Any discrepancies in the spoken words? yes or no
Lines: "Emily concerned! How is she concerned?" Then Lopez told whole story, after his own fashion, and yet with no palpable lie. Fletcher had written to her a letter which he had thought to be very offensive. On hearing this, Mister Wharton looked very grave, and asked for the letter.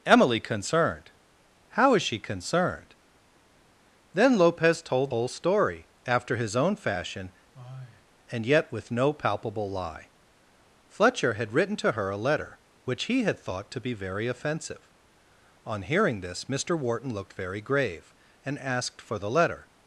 no